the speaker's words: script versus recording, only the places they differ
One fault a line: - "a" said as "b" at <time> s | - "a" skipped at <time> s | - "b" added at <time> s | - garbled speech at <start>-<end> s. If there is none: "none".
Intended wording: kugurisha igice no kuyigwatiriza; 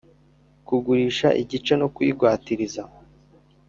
none